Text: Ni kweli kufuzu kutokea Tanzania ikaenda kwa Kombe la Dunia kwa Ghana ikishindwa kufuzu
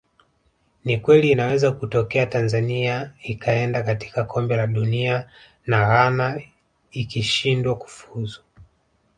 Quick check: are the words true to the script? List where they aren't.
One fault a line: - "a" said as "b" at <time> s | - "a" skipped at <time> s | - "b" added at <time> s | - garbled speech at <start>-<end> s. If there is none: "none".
- "kufuzu" said as "inaweza" at 1.3 s
- "kwa" said as "katika" at 3.8 s
- "kwa" said as "na" at 5.7 s